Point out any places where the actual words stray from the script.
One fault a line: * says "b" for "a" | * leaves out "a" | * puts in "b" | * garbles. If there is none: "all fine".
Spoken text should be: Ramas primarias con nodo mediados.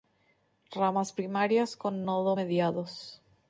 all fine